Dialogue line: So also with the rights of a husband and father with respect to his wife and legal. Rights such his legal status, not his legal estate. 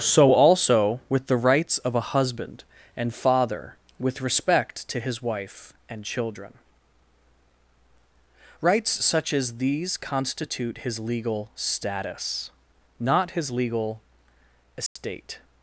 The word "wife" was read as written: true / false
true